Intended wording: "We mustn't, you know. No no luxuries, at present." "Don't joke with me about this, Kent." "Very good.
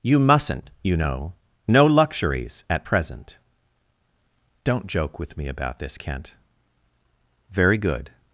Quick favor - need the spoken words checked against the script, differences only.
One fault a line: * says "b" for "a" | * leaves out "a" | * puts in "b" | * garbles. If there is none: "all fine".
* says "You" for "We"
* leaves out "no"